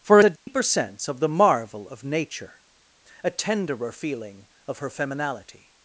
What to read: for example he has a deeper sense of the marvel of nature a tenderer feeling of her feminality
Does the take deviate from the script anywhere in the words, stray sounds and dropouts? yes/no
yes